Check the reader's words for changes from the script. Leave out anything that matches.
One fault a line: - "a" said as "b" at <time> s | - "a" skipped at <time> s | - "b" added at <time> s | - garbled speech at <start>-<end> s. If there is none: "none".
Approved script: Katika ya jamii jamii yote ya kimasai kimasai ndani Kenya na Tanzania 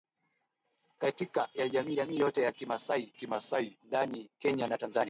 none